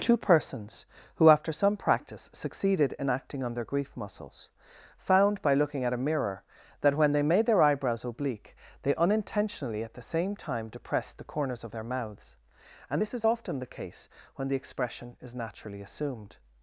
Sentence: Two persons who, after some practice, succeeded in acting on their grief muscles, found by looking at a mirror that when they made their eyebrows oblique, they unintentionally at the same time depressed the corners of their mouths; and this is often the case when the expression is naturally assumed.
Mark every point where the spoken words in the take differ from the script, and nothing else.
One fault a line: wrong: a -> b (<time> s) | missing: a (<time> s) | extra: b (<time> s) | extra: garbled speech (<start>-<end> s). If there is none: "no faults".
no faults